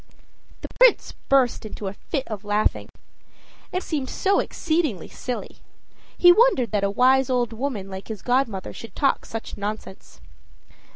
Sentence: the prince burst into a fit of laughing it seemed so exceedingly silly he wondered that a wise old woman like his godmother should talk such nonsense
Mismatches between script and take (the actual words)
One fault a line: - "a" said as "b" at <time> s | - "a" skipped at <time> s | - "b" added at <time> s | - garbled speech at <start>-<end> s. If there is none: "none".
none